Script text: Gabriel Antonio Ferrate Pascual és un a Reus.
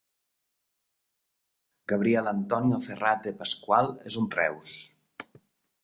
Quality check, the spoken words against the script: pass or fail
pass